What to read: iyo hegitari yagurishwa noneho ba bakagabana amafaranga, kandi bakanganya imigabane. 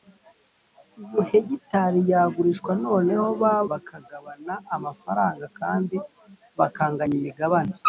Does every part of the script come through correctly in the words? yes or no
yes